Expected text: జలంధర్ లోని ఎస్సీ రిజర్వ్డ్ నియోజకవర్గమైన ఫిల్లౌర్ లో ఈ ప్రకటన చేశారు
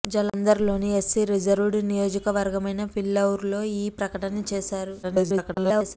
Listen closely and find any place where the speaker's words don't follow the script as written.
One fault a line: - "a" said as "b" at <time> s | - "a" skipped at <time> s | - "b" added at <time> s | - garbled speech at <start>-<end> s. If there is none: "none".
- garbled speech at 5.0-6.0 s